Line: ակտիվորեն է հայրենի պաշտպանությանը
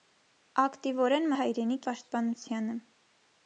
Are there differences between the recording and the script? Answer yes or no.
no